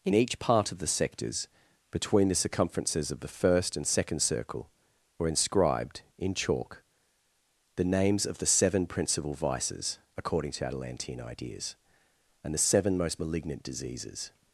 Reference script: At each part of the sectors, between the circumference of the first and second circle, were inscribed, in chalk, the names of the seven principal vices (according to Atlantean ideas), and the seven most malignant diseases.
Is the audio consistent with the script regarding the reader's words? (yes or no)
no